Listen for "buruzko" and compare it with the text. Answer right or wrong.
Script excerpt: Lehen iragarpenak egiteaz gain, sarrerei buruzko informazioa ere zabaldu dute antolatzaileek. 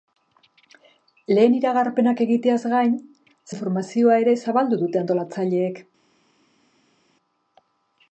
wrong